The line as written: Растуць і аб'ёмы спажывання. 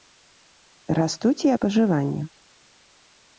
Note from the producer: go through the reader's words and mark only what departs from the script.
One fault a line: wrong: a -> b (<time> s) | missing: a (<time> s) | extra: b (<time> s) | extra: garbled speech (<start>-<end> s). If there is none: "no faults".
missing: аб'ёмы (1.5 s)